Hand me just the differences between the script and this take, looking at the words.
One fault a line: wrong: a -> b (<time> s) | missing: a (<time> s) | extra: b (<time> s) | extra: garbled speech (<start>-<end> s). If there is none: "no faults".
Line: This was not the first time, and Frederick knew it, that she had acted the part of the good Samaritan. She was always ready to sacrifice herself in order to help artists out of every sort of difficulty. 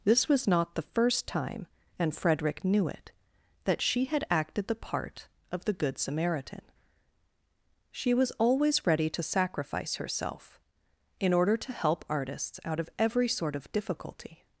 no faults